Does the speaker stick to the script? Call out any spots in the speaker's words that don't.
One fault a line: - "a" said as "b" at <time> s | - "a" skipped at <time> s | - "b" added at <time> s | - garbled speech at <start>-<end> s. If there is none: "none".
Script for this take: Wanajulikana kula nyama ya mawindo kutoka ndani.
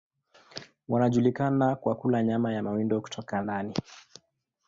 - "kwa" added at 1.8 s